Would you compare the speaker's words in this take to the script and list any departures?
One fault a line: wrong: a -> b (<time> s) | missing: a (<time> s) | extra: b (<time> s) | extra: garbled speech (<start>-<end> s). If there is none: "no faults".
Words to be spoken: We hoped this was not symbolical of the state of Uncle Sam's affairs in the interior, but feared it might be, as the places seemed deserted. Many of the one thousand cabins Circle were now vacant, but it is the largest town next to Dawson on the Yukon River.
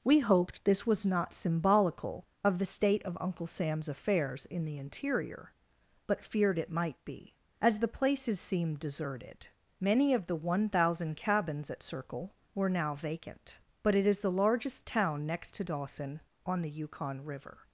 extra: at (11.7 s)